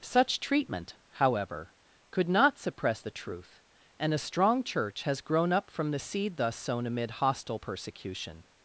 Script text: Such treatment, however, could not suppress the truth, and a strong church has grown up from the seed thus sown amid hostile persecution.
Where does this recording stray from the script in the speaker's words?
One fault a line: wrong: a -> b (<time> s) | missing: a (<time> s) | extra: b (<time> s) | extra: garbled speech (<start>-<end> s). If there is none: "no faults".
no faults